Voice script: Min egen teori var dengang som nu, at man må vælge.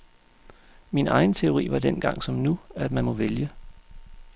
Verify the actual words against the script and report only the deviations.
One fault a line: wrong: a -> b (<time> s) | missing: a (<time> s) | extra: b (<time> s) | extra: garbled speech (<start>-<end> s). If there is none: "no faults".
no faults